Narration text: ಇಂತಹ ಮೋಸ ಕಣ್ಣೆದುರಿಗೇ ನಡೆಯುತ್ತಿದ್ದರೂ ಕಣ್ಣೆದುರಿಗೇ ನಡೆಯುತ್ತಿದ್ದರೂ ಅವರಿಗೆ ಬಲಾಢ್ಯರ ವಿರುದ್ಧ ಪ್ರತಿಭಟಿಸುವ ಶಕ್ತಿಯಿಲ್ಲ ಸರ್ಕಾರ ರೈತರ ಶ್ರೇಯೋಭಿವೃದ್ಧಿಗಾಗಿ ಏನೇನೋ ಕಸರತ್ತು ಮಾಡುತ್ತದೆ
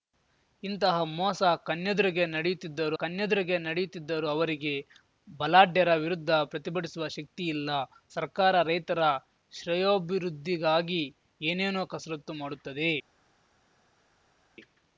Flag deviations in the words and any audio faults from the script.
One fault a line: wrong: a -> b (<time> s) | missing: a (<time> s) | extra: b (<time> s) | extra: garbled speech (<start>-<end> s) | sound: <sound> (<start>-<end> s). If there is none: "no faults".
no faults